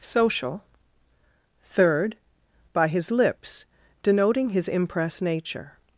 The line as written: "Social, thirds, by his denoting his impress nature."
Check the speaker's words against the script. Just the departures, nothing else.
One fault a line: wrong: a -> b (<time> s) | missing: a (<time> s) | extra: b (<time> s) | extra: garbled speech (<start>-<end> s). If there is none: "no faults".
wrong: thirds -> third (1.7 s)
extra: lips (3.1 s)